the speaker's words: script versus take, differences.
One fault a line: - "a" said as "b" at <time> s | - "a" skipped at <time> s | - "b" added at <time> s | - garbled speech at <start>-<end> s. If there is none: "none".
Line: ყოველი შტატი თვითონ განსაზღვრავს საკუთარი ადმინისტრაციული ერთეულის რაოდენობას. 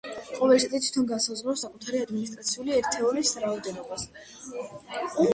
none